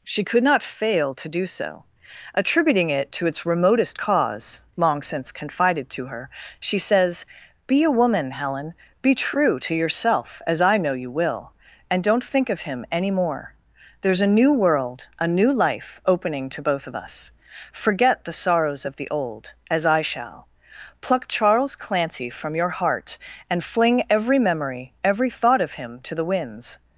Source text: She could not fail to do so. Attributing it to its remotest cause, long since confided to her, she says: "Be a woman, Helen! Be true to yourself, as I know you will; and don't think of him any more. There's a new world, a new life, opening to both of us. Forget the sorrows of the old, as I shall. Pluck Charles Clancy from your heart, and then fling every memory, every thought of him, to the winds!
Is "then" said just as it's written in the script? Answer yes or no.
no